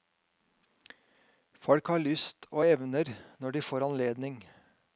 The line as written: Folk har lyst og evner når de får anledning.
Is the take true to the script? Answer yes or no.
yes